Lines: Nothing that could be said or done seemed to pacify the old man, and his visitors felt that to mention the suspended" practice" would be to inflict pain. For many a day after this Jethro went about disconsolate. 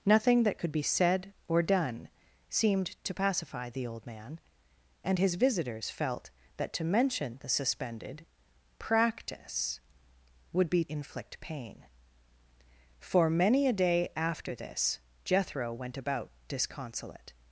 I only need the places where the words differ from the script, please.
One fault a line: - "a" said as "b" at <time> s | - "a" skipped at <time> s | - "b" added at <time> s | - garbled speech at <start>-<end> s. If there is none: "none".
- "to" skipped at 10.8 s